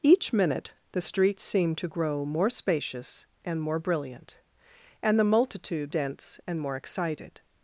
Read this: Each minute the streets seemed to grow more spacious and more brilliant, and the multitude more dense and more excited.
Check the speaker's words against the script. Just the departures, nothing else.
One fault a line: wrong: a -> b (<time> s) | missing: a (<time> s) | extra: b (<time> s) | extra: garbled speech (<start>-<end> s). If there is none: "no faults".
missing: more (5.9 s)